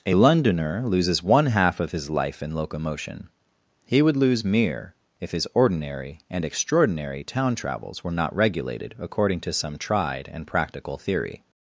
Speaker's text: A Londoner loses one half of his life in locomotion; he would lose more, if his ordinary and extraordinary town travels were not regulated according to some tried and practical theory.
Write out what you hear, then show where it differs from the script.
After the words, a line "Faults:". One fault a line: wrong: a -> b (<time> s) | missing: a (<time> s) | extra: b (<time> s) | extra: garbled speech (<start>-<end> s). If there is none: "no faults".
A Londoner loses one half of his life in locomotion; he would lose mere, if his ordinary and extraordinary town travels were not regulated according to some tried and practical theory.
Faults:
wrong: more -> mere (4.4 s)